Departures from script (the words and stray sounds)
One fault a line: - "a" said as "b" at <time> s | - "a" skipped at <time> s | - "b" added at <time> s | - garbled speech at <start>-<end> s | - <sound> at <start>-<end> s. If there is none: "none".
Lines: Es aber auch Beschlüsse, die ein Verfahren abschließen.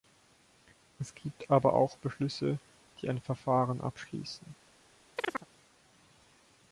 - "gibt" added at 1.1 s
- chirp at 5.2-5.5 s